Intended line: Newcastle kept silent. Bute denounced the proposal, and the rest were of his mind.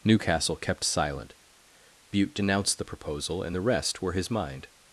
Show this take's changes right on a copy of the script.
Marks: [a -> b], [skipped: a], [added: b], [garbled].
Newcastle kept silent. Bute denounced the proposal, and the rest were [skipped: of] his mind.